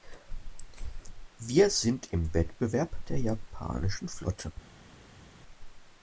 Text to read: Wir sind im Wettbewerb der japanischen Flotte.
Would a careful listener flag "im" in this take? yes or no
no